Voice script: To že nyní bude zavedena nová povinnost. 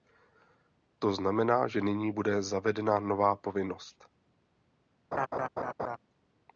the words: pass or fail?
fail